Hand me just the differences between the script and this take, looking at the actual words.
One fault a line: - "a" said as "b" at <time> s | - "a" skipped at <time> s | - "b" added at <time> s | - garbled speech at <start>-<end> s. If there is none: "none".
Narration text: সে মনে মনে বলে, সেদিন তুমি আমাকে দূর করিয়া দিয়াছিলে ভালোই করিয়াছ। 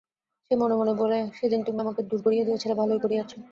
none